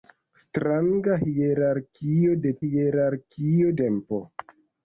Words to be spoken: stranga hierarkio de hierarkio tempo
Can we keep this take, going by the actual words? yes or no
yes